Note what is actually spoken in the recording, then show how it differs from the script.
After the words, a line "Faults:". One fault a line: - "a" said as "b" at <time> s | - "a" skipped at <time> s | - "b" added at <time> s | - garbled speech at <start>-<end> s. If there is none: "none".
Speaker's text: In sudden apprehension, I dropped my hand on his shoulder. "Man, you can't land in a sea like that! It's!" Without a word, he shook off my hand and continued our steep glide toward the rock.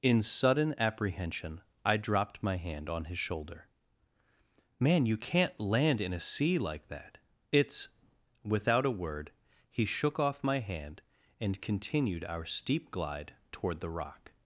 In sudden apprehension, I dropped my hand on his shoulder. "Man, you can't land in a sea like that! It's!" Without a word, he shook off my hand and continued our steep glide toward the rock.
Faults:
none